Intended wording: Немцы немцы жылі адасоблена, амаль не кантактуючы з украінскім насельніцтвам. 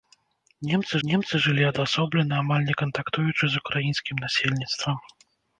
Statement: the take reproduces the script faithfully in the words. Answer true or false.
true